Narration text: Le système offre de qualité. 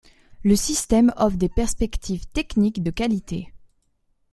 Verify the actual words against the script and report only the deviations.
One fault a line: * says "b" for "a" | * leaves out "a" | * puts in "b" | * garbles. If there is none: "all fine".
* puts in "des perspectives techniques"